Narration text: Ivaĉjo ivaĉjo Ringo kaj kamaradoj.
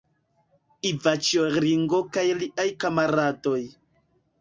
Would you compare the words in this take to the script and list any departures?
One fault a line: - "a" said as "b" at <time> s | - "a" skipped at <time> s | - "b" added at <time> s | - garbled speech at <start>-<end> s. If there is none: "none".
- "ivaĉjo" skipped at 1.4 s
- "liaj" added at 2.4 s